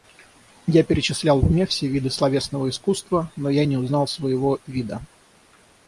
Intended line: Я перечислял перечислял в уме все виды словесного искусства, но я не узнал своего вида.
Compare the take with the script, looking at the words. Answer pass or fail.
fail